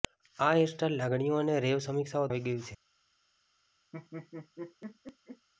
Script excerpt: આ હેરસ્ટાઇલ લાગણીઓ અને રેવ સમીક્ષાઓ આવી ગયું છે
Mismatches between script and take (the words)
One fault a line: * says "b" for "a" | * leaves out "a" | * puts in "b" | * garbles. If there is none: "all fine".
all fine